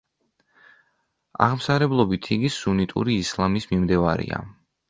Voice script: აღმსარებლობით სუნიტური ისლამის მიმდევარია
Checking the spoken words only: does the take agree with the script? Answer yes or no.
no